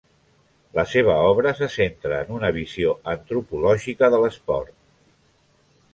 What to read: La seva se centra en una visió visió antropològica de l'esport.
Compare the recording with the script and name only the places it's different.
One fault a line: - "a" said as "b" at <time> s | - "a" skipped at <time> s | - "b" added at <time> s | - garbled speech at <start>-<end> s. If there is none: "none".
- "obra" added at 1.3 s
- "visió" skipped at 3.0 s